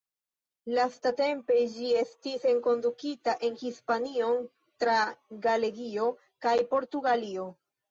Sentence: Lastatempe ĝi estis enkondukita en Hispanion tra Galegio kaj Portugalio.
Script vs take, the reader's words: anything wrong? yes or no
no